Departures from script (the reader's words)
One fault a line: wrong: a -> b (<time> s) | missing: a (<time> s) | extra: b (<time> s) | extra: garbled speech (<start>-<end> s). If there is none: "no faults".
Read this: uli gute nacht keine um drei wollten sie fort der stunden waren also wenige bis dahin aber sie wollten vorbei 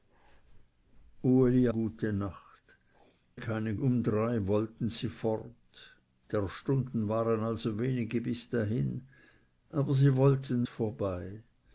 no faults